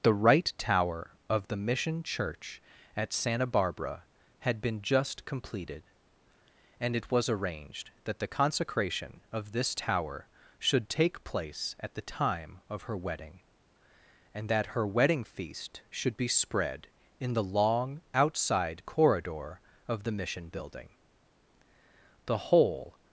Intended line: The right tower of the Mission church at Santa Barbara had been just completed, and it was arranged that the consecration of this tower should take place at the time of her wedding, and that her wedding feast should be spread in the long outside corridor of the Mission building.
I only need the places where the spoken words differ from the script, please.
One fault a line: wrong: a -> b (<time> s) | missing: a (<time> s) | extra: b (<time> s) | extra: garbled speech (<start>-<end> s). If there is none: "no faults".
extra: The whole (22.2 s)